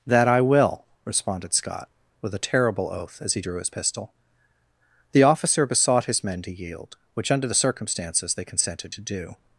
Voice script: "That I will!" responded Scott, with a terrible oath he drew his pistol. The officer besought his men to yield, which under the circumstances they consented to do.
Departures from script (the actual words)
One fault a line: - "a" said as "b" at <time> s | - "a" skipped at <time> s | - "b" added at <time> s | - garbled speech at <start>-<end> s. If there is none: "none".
- "as" added at 3.2 s